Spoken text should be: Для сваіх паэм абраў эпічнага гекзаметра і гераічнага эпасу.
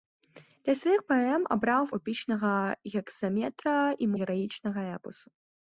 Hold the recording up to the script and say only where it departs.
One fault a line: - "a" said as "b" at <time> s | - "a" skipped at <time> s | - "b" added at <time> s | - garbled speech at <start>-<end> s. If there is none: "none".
none